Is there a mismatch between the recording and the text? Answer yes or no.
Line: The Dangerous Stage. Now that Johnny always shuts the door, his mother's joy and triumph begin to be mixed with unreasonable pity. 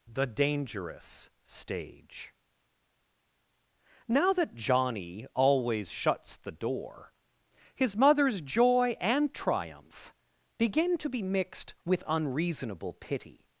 no